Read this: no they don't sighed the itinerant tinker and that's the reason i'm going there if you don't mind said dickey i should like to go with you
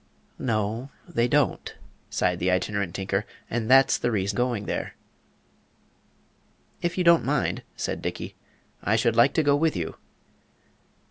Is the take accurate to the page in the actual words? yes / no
no